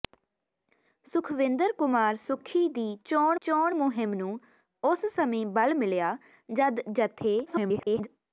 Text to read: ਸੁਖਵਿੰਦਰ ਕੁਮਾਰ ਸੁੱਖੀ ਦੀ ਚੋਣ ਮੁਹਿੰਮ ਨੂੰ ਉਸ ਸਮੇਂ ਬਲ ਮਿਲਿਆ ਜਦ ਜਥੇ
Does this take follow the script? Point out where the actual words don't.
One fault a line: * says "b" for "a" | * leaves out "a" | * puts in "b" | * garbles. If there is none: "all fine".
* puts in "ਚੋਣ"
* garbles